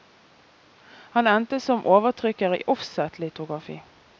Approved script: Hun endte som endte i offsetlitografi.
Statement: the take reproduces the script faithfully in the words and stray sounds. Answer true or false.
false